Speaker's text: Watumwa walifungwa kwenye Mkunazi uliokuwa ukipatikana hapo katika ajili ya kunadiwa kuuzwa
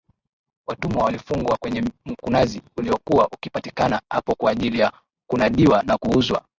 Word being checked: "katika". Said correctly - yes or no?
no